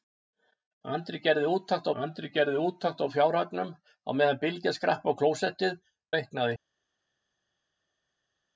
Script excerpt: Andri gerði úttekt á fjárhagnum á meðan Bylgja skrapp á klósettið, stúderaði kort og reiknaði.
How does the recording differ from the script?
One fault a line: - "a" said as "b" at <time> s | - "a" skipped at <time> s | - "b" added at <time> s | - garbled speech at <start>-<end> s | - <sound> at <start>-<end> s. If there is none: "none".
- "andri gerði úttekt" added at 2.0 s
- "stúderaði kort og" skipped at 5.8 s